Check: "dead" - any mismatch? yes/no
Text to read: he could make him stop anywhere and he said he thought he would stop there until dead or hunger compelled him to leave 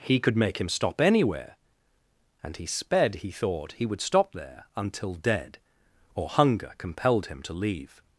no